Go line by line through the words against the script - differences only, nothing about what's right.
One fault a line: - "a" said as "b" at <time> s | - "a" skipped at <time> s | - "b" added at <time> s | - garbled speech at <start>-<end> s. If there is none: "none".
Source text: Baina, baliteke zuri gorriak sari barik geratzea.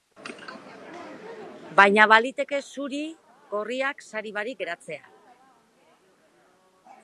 none